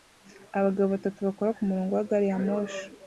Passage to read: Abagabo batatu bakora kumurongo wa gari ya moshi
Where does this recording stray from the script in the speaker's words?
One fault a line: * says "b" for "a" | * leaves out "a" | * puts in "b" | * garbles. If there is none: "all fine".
all fine